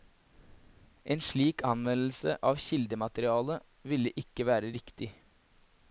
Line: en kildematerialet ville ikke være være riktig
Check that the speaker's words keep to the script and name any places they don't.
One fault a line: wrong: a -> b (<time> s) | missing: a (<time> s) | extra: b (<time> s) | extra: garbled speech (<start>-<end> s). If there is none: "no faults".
extra: slik anvendelse av (1.2 s)
missing: være (4.7 s)